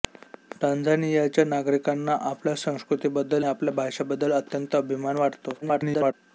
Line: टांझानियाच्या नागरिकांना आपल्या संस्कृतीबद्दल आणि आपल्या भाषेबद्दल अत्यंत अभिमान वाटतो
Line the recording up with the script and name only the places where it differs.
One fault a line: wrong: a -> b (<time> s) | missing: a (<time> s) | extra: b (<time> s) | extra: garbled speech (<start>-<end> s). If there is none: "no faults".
missing: आणि (3.5 s)
extra: garbled speech (5.6-6.1 s)